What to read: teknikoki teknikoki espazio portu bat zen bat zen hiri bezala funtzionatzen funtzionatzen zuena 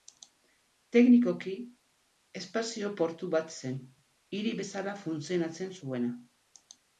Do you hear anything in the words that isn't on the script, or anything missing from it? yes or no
yes